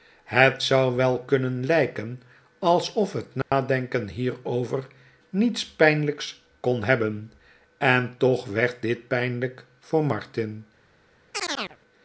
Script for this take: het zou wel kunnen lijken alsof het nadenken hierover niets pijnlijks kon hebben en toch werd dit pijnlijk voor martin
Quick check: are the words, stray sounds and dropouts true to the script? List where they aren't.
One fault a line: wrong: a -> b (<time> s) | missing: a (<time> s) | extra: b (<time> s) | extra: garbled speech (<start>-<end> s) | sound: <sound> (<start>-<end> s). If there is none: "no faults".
sound: dropout (3.4-3.5 s)
sound: chirp (11.3-11.8 s)